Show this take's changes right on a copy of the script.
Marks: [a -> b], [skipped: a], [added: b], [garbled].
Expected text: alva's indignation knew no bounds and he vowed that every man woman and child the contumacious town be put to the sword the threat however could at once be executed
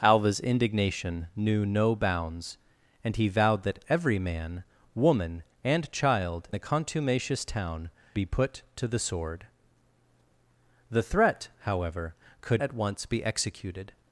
alva's indignation knew no bounds and he vowed that every man woman and child the contumacious town be put to the sword the threat however could at once be executed